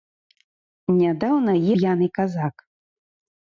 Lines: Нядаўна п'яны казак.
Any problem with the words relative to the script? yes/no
no